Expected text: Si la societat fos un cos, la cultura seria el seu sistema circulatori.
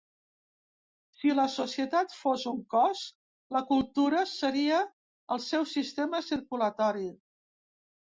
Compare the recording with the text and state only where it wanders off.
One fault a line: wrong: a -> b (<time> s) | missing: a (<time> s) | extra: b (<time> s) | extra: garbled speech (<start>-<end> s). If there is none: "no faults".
no faults